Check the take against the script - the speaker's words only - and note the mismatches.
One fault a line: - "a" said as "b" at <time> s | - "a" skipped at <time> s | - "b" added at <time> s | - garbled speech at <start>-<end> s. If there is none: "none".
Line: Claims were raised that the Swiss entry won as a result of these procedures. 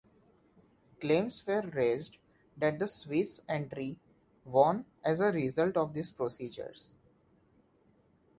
none